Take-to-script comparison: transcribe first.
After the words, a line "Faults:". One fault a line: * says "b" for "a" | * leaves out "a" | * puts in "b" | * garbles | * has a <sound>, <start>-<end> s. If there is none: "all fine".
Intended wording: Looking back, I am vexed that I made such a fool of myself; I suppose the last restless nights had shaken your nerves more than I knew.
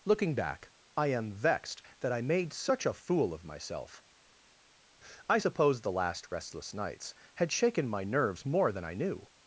Looking back, I am vexed that I made such a fool of myself; I suppose the last restless nights had shaken my nerves more than I knew.
Faults:
* says "my" for "your"